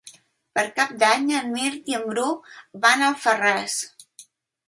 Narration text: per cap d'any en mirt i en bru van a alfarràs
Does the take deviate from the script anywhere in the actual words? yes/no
no